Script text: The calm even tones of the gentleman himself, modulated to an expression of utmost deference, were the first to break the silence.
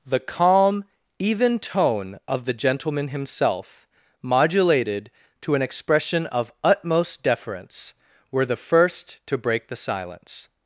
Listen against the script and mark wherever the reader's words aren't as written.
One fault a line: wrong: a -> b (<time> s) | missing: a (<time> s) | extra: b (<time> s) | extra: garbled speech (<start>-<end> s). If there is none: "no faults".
wrong: tones -> tone (1.6 s)